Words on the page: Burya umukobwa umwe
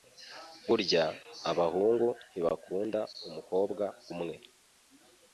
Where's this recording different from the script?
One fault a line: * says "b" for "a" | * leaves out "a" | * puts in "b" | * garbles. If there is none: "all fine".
* puts in "abahungu ntibakunda"